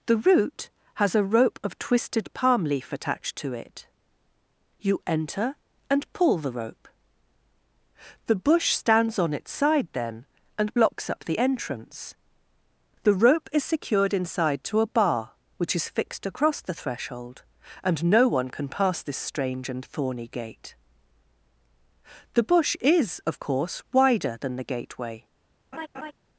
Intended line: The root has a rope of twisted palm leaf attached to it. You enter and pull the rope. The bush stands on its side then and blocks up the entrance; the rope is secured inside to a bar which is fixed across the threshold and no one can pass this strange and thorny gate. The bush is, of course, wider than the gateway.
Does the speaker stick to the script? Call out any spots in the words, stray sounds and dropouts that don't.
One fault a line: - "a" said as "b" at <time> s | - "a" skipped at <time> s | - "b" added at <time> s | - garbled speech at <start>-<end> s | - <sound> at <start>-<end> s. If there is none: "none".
- laugh at 25.7-26.1 s